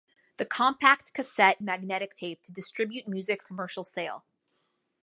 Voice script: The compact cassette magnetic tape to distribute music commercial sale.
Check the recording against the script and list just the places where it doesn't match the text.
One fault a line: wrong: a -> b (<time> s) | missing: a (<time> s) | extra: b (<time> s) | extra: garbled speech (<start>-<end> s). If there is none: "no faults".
no faults